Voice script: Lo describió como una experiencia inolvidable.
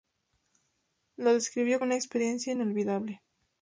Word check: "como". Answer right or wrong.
wrong